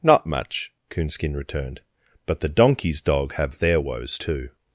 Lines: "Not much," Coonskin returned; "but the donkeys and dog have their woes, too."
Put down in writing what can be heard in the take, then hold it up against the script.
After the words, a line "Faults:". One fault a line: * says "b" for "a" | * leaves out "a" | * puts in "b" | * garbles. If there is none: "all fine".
"Not much," Coonskin returned; "but the donkeys dog have their woes, too."
Faults:
* leaves out "and"